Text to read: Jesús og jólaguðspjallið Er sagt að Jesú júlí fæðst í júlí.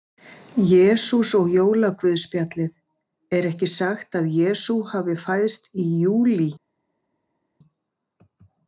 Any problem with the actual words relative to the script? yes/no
yes